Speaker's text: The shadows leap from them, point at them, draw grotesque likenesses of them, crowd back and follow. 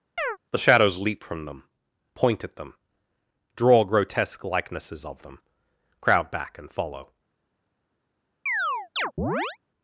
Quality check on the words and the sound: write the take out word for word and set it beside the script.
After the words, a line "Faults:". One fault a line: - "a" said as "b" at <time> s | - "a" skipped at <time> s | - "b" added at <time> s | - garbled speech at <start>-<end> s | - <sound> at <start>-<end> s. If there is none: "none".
The shadows leap from them, point at them, draw grotesque likenesses of them, crowd back and follow.
Faults:
- chirp at 0.2-0.4 s
- chirp at 8.5-9.6 s